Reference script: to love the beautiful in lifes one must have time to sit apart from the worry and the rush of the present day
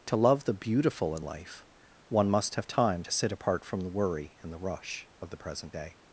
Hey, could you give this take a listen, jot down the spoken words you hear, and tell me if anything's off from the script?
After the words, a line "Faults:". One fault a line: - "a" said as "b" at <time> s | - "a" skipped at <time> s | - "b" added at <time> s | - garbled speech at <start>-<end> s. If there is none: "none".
to love the beautiful in life one must have time to sit apart from the worry and the rush of the present day
Faults:
- "lifes" said as "life" at 1.2 s